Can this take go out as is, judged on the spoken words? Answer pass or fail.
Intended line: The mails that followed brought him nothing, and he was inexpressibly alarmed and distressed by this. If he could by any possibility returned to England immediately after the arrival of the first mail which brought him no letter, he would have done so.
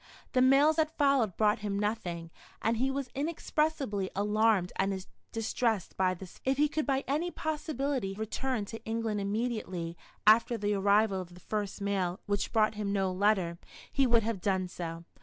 pass